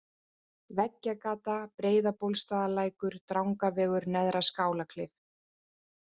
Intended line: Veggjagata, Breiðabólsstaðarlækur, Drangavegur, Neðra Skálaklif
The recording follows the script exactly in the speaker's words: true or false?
true